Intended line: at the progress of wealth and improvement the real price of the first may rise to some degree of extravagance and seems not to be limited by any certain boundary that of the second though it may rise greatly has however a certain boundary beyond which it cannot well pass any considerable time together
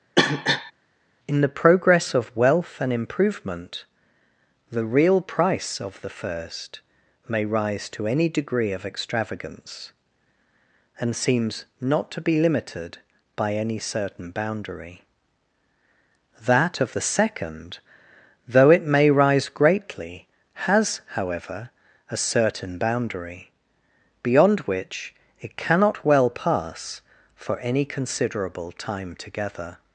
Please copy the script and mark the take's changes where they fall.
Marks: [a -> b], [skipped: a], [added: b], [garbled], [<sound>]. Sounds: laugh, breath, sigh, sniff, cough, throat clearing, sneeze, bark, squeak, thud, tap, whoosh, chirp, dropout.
[cough] [at -> in] the progress of wealth and improvement the real price of the first may rise to [some -> any] degree of extravagance and seems not to be limited by any certain boundary that of the second though it may rise greatly has however a certain boundary beyond which it cannot well pass [added: for] any considerable time together